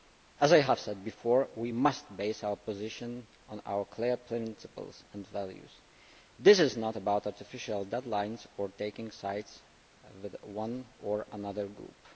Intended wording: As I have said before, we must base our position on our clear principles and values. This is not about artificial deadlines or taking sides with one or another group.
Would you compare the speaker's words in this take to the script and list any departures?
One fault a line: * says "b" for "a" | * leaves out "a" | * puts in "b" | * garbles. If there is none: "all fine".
all fine